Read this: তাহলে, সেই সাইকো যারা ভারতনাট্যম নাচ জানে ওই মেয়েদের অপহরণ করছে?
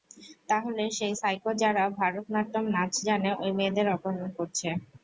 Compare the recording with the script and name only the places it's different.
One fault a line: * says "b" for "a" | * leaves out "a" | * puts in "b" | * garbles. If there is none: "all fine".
all fine